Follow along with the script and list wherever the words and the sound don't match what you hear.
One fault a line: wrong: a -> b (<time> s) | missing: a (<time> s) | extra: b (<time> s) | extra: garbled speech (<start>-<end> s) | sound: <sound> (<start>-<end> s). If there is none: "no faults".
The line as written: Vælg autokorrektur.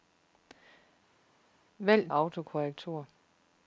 no faults